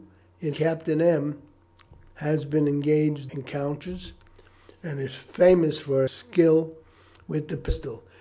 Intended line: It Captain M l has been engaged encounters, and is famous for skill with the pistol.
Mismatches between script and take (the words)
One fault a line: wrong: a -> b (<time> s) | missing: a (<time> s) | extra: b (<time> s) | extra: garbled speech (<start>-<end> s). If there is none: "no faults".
no faults